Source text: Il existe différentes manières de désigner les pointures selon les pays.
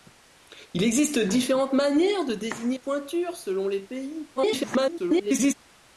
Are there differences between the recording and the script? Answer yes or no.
yes